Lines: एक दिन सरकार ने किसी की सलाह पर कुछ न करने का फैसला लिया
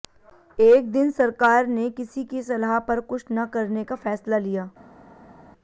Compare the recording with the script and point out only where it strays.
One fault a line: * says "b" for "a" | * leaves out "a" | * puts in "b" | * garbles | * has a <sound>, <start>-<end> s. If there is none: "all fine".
all fine